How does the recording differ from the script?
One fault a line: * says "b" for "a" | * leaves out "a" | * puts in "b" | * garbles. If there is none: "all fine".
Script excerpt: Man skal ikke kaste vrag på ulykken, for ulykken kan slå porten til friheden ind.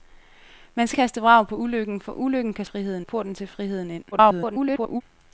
* leaves out "ikke"
* says "friheden" for "slå"
* garbles